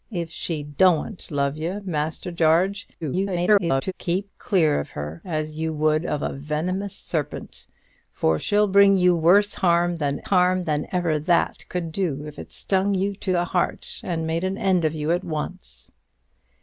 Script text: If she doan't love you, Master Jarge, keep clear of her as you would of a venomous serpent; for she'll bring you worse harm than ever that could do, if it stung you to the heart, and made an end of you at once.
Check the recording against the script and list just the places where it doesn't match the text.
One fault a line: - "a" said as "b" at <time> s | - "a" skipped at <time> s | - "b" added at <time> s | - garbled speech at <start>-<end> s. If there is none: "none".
- garbled speech at 3.0-3.9 s
- "harm than" added at 10.2 s